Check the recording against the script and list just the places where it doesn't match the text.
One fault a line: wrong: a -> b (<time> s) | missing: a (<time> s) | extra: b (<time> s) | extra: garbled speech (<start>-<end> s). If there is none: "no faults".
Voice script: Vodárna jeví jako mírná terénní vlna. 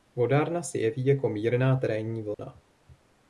extra: se (0.6 s)